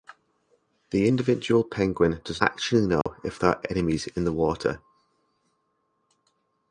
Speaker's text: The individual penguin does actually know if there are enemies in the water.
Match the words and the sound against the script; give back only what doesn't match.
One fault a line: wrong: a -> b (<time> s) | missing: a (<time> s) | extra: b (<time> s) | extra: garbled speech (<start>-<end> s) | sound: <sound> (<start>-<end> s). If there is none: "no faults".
sound: dropout (3.0-3.1 s)